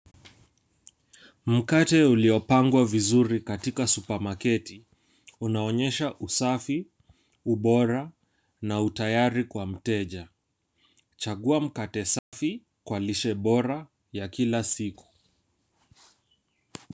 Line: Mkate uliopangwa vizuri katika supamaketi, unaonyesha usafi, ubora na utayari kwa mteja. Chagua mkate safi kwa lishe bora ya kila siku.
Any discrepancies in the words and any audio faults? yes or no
yes